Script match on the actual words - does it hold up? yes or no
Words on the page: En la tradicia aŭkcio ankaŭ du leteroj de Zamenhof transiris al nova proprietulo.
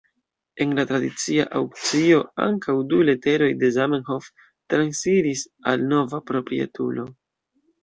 yes